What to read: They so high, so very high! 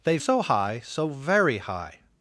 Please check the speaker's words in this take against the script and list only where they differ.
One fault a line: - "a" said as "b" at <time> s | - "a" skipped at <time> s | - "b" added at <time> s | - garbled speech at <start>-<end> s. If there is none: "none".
none